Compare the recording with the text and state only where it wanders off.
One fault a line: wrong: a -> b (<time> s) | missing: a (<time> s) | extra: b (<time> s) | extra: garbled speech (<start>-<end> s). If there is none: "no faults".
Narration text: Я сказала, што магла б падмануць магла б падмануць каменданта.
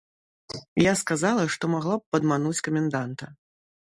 missing: магла б падмануць (2.6 s)